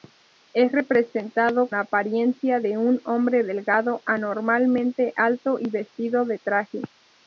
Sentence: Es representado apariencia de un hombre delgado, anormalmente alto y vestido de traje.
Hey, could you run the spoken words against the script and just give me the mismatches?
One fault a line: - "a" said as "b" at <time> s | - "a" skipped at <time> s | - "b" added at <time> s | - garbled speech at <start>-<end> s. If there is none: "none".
none